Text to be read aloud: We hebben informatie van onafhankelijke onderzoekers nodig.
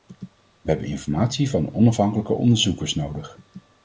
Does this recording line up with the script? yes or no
yes